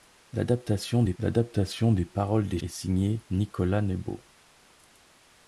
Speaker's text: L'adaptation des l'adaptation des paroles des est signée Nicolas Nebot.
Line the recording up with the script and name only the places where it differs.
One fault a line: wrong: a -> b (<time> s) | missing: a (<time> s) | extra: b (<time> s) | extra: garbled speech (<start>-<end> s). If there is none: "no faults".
no faults